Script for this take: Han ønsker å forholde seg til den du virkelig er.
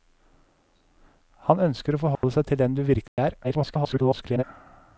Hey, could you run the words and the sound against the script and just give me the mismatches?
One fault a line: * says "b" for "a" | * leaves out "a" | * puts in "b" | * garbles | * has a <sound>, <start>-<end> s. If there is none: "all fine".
* has a dropout, 2.2-2.2 s
* has a dropout, 3.1-3.2 s
* garbles